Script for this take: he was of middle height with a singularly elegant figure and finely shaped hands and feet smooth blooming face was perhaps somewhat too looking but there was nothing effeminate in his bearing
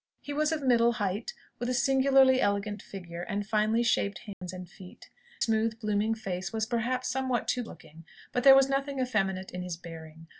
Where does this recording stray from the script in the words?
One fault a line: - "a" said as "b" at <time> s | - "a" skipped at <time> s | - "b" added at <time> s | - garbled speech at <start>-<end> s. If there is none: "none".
none